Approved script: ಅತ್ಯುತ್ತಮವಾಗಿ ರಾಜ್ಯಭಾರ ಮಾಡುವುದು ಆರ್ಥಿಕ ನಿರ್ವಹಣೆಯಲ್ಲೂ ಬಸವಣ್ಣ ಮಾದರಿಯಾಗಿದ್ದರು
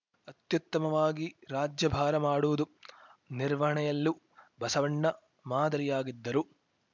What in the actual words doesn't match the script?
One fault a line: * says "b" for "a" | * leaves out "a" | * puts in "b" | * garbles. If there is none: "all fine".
* leaves out "ಆರ್ಥಿಕ"